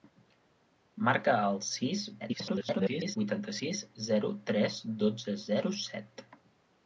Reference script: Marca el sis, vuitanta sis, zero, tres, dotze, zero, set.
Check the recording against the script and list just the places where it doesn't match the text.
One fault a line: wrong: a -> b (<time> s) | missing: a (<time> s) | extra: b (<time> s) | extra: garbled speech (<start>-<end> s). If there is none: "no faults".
extra: garbled speech (2.2-3.2 s)